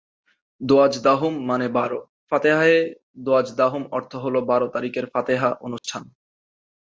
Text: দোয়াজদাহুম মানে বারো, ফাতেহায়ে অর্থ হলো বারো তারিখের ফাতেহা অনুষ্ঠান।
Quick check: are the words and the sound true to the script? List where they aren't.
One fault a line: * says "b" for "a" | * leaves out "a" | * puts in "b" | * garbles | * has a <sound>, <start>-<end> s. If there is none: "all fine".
* puts in "দোয়াজদাহুম"
* has a dropout, 5.8-5.8 s